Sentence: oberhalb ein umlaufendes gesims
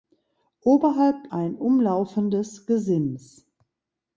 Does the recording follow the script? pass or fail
pass